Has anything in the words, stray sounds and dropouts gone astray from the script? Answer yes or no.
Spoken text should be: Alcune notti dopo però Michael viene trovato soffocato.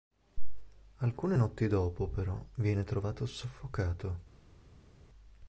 yes